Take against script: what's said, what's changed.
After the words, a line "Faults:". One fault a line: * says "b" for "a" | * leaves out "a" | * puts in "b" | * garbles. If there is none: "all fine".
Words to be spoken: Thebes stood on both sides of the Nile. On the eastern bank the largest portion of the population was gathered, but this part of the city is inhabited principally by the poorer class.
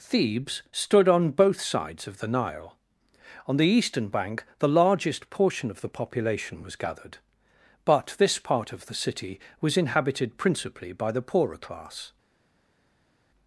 Thebes stood on both sides of the Nile. On the eastern bank the largest portion of the population was gathered, but this part of the city was inhabited principally by the poorer class.
Faults:
* says "was" for "is"